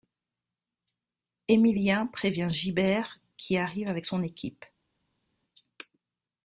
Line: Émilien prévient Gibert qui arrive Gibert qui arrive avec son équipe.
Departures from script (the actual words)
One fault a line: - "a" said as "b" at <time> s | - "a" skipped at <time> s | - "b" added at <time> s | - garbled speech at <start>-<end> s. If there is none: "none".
- "Gibert qui arrive" skipped at 3.9 s